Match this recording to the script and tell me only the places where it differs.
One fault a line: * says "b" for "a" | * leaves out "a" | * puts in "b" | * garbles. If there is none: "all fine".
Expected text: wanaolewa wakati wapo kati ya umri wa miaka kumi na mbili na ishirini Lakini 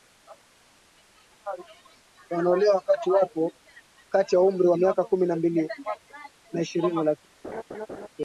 all fine